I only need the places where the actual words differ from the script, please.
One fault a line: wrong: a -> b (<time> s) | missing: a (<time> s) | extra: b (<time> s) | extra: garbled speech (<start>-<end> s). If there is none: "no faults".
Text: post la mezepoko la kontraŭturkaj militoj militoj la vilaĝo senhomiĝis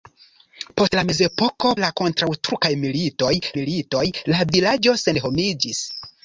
no faults